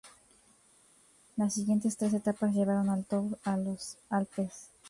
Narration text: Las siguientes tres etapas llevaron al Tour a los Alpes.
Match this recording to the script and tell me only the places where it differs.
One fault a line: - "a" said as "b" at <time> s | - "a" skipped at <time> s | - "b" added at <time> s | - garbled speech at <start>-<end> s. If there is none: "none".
none